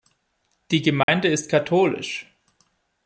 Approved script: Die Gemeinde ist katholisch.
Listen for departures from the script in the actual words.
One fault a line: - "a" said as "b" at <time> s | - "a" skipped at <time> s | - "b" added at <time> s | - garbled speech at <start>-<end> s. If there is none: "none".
none